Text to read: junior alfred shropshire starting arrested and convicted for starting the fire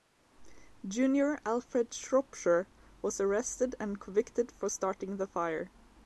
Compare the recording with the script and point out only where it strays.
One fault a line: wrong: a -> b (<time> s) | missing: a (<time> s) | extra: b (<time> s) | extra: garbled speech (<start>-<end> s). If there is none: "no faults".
wrong: starting -> was (3.0 s)